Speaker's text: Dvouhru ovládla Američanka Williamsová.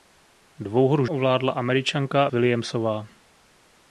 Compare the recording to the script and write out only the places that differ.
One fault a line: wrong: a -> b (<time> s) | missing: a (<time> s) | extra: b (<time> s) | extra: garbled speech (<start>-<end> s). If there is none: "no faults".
no faults